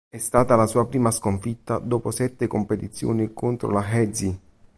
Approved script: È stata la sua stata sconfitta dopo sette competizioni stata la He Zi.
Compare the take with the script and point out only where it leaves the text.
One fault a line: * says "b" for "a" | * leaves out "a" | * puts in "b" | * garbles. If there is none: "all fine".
* says "prima" for "stata"
* says "contro" for "stata"